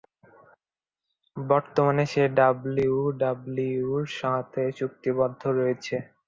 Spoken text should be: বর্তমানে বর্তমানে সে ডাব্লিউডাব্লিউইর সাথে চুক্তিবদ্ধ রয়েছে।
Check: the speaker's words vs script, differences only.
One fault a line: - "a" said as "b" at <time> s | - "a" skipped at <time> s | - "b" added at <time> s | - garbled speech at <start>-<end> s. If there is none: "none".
- "বর্তমানে" skipped at 2.0 s